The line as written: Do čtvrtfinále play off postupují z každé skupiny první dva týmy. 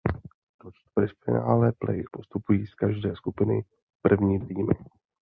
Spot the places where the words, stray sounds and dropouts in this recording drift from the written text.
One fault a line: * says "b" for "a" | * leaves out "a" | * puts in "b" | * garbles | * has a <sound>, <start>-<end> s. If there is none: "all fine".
* leaves out "off"
* leaves out "dva"